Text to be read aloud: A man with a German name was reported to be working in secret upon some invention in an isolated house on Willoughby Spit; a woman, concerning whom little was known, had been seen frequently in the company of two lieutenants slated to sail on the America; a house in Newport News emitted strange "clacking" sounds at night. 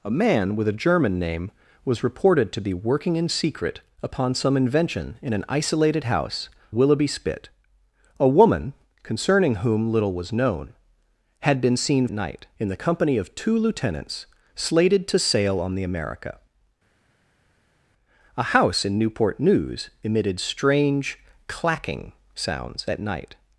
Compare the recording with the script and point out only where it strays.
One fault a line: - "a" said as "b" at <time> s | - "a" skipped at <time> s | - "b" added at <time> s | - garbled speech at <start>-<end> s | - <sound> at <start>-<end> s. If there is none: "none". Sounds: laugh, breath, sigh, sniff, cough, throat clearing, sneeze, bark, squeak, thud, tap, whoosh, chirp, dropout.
- "on" skipped at 6.5 s
- "frequently" said as "night" at 12.1 s